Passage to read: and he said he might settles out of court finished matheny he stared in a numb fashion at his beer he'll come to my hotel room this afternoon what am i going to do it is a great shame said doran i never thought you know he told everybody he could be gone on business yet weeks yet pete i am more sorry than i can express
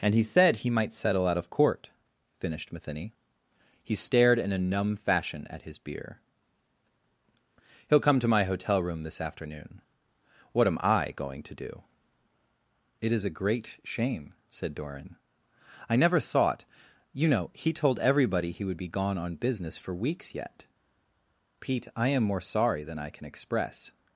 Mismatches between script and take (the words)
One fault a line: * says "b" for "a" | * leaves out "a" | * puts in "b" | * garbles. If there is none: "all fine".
* says "settle" for "settles"
* says "would" for "could"
* says "for" for "yet"